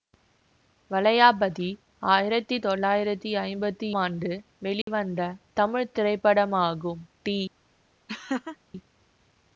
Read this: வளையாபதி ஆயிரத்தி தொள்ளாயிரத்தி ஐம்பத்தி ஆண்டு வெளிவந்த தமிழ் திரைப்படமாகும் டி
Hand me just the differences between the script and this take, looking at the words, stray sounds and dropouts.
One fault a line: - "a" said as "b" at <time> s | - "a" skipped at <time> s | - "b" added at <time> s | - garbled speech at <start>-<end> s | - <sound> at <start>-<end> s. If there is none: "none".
- dropout at 4.8-4.9 s
- laugh at 8.1-8.6 s